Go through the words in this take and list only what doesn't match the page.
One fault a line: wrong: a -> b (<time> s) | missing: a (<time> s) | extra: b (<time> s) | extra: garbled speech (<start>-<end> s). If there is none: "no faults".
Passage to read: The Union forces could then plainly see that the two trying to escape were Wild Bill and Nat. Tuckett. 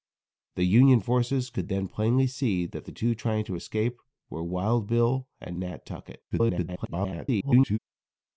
extra: garbled speech (6.3-7.8 s)